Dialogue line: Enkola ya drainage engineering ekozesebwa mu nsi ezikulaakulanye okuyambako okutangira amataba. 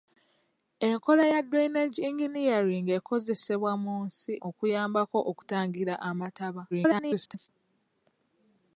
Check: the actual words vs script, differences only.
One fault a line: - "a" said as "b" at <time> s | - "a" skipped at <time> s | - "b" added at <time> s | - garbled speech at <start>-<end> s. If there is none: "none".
- "ezikulaakulanye" skipped at 4.3 s
- garbled speech at 6.7-7.5 s